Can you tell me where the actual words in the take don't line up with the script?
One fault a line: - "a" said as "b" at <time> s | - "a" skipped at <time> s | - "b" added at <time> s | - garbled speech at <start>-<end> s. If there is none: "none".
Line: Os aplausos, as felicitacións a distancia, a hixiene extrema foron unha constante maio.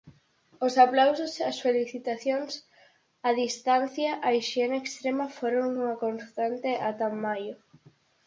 - "ata" added at 6.9 s